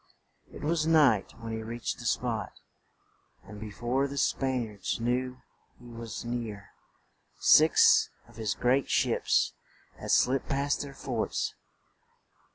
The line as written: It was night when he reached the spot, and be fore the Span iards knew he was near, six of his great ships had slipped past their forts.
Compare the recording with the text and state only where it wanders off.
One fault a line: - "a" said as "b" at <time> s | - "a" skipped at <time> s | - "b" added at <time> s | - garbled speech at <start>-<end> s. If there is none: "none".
none